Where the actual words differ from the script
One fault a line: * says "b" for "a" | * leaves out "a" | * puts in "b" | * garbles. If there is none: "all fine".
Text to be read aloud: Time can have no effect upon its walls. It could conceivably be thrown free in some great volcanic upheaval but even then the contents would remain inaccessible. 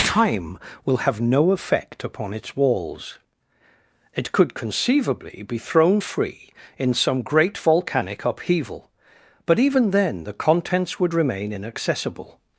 * says "will" for "can"